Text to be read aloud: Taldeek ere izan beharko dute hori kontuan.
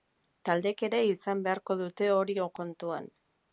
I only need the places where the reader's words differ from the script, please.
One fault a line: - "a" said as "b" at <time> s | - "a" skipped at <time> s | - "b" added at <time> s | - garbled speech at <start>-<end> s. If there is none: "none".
none